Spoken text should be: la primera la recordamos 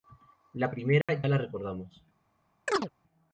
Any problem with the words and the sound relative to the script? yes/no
yes